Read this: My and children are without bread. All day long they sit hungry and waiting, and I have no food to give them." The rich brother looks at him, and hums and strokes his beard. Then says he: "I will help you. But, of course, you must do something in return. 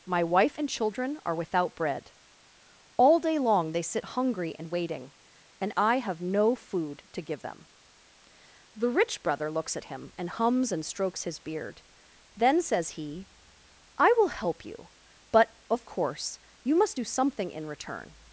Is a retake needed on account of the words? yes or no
yes